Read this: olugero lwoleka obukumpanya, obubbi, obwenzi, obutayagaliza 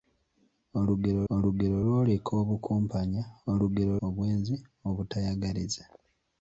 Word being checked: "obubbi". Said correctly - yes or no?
no